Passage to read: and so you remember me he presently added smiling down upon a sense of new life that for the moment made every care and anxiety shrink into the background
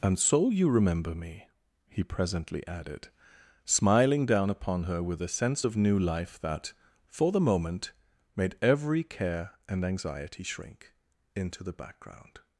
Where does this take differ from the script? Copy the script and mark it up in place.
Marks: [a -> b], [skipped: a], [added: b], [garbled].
and so you remember me he presently added smiling down upon [added: her with] a sense of new life that for the moment made every care and anxiety shrink into the background